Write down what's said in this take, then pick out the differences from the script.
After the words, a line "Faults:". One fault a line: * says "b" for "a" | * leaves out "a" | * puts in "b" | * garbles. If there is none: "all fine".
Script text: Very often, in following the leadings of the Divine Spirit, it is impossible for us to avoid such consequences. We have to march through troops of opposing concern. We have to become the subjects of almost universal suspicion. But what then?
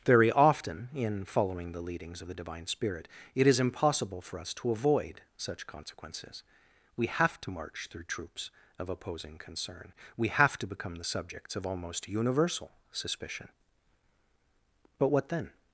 Very often, in following the leadings of the Divine Spirit, it is impossible for us to avoid such consequences. We have to march through troops of opposing concern. We have to become the subjects of almost universal suspicion. But what then?
Faults:
all fine